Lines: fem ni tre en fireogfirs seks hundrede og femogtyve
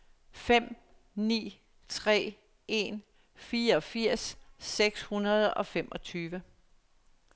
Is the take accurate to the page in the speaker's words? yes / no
yes